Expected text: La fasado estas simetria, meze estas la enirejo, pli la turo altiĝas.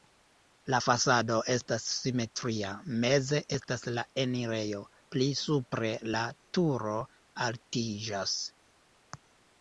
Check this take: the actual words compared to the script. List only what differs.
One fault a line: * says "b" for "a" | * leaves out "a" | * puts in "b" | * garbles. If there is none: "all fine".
* puts in "supre"